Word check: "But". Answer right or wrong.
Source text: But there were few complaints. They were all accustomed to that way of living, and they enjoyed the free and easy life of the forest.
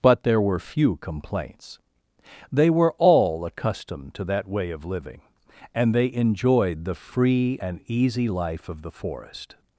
right